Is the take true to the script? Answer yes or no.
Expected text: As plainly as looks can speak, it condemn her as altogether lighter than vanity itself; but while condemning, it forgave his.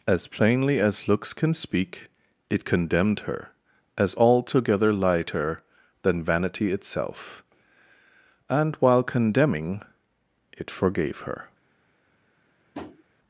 no